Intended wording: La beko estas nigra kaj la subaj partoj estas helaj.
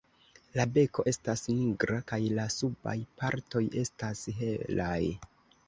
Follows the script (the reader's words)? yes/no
yes